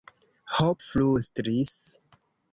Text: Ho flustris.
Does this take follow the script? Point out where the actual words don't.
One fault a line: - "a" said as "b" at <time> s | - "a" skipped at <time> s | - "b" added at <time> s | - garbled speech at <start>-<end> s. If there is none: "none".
none